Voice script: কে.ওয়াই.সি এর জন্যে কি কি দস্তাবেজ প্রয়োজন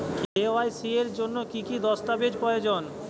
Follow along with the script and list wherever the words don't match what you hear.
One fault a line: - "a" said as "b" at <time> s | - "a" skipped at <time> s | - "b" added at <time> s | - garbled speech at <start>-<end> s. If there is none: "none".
none